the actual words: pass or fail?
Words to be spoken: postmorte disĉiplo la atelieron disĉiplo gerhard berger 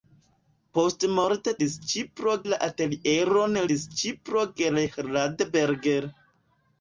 pass